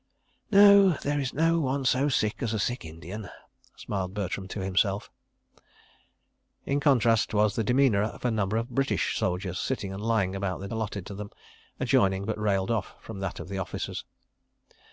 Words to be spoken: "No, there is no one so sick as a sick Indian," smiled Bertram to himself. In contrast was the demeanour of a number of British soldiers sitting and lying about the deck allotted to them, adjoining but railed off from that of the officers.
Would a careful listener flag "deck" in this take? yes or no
yes